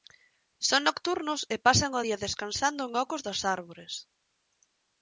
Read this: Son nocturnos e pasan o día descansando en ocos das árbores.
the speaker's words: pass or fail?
pass